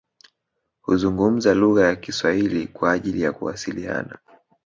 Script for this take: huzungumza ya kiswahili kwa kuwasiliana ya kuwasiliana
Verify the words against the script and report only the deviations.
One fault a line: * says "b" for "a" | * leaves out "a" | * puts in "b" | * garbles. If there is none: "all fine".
* puts in "lugha"
* says "ajili" for "kuwasiliana"